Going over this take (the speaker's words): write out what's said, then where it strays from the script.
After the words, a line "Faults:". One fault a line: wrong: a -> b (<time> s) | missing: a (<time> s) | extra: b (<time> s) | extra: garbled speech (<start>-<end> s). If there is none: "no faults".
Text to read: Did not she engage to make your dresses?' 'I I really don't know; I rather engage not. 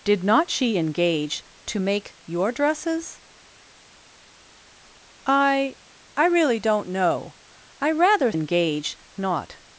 Did not she engage to make your dresses?' 'I I really don't know; I rather engage not.
Faults:
no faults